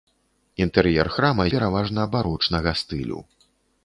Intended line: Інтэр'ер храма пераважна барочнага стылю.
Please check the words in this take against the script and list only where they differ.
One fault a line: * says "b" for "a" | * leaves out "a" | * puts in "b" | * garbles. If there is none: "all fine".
all fine